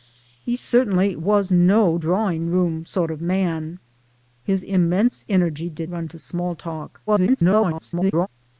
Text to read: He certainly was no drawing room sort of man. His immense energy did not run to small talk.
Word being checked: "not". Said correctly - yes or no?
no